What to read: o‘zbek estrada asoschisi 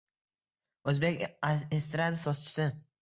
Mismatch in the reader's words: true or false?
false